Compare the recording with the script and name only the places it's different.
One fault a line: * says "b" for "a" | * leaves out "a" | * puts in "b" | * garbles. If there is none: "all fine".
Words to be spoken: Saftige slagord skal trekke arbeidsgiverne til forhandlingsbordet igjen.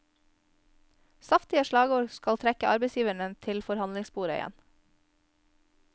all fine